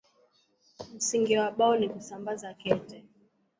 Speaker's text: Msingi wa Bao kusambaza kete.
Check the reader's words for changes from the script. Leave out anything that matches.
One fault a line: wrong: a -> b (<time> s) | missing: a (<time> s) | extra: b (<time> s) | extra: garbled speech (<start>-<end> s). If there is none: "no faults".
extra: ni (1.8 s)